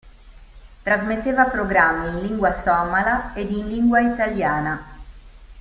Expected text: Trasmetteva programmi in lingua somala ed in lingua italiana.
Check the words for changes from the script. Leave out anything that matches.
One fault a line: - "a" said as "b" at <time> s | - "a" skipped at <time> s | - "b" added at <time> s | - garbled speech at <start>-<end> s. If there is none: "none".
none